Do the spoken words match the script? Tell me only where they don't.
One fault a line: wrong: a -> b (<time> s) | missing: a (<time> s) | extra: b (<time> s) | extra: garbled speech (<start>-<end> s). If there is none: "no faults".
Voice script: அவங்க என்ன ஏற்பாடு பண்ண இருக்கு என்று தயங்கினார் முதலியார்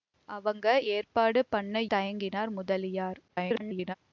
missing: என்ன (0.7 s)
missing: இருக்கு என்று (1.8 s)
extra: garbled speech (3.3-3.9 s)